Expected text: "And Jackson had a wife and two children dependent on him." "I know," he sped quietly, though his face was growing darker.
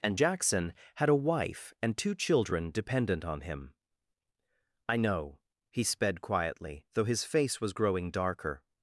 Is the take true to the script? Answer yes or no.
yes